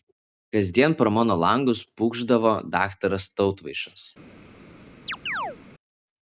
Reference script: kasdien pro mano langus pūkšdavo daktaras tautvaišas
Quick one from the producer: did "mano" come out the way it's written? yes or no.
yes